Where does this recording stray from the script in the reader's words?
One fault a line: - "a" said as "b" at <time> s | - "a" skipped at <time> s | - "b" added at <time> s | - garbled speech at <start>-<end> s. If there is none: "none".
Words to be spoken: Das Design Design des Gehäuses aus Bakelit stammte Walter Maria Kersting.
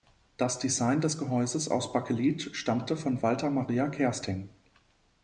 - "Design" skipped at 1.0 s
- "von" added at 3.0 s